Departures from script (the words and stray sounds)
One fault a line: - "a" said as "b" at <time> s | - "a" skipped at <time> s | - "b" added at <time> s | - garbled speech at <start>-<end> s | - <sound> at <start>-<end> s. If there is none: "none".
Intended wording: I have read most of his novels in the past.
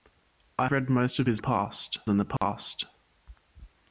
- "have" skipped at 0.7 s
- "novels" said as "past" at 1.4 s
- dropout at 2.4-2.4 s